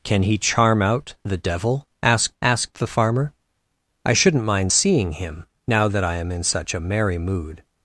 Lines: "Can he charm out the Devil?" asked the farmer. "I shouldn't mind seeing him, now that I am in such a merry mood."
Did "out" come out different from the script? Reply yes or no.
no